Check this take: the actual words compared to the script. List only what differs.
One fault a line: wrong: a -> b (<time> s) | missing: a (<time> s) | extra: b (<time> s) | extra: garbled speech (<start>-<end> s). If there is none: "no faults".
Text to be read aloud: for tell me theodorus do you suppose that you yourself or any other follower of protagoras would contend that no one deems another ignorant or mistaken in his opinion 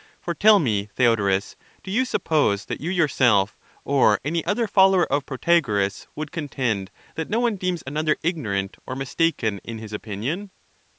no faults